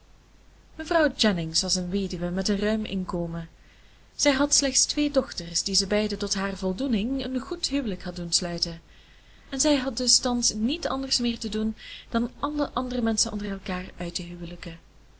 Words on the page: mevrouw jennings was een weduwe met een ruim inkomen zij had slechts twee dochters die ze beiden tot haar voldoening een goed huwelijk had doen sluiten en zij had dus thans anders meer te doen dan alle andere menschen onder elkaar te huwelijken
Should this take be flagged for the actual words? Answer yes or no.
yes